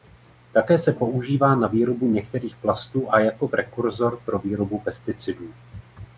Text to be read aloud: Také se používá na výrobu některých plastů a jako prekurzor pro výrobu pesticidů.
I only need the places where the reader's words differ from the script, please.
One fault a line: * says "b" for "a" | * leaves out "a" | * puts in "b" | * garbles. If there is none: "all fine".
all fine